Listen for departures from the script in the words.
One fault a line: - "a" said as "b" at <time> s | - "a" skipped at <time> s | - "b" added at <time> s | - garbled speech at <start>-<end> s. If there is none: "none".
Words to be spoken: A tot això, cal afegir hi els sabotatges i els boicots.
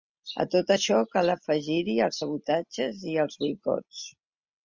none